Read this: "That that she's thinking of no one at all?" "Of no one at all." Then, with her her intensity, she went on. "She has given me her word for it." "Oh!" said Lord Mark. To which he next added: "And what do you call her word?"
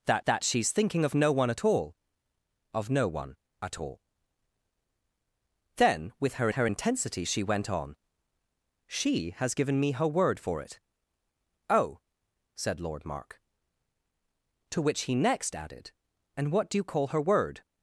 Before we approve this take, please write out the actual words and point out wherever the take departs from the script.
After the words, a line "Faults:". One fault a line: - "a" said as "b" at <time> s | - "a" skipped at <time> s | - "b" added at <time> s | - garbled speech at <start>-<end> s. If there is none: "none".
"That that she's thinking of no one at all?" "Of no one at all." Then, with her her intensity, she went on. "She has given me her word for it." "Oh!" said Lord Mark. To which he next added: "And what do you call her word?"
Faults:
none